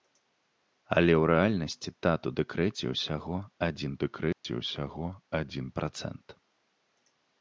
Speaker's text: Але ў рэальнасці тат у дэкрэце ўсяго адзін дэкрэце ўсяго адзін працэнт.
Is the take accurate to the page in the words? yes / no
yes